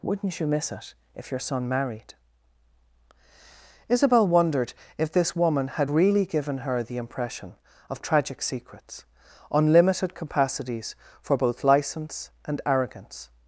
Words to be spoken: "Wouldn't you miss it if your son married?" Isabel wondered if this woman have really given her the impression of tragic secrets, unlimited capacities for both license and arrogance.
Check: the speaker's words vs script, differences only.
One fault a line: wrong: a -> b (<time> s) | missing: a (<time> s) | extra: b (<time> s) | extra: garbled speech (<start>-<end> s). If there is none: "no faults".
wrong: have -> had (5.7 s)